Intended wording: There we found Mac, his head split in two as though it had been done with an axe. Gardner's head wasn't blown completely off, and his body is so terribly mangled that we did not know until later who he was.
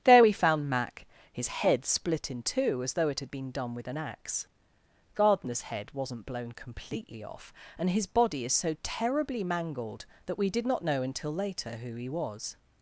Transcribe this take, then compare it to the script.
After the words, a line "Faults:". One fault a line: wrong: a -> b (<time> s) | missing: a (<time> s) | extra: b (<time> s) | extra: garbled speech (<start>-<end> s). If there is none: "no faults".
There we found Mac, his head split in two as though it had been done with an axe. Gardner's head wasn't blown completely off, and his body is so terribly mangled that we did not know until later who he was.
Faults:
no faults